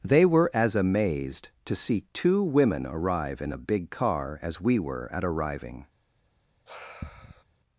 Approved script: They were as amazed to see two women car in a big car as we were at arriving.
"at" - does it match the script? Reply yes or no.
yes